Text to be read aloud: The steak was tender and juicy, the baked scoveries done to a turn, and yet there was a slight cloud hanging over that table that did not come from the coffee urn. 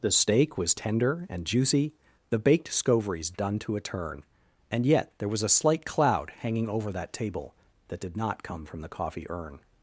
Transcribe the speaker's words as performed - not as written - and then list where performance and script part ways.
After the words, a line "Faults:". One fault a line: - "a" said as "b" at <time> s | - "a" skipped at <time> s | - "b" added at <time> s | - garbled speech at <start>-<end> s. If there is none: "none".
The steak was tender and juicy, the baked scoveries done to a turn, and yet there was a slight cloud hanging over that table that did not come from the coffee urn.
Faults:
none